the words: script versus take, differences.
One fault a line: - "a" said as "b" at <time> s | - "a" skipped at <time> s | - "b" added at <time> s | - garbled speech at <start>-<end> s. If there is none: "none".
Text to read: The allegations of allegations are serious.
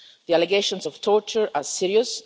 - "allegations" said as "torture" at 1.0 s